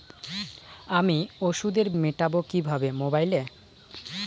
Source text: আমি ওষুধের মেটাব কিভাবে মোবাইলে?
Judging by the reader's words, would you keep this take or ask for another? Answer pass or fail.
pass